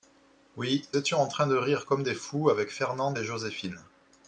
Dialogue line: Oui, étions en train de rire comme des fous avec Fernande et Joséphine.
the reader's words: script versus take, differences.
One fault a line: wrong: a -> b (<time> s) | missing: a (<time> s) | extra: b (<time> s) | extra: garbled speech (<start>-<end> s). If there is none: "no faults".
no faults